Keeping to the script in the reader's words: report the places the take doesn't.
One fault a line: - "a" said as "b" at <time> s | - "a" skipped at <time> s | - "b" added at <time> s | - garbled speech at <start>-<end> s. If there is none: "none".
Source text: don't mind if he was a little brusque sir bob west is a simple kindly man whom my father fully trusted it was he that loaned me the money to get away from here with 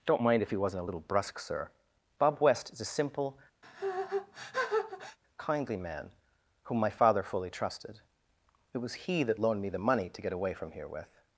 - "was" said as "wasn't" at 0.6 s